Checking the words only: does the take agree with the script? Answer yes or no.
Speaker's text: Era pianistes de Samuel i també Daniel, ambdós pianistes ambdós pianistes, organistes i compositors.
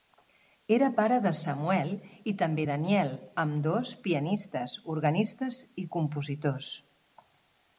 no